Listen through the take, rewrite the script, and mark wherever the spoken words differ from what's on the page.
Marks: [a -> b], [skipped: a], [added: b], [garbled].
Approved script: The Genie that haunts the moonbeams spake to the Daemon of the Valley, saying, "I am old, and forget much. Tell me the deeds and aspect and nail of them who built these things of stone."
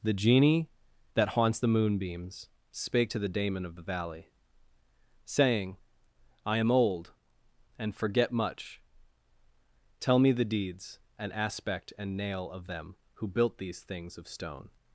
The Genie that haunts the moonbeams spake to the Daemon of the Valley, saying, "I am old, and forget much. Tell me the deeds and aspect and nail of them who built these things of stone."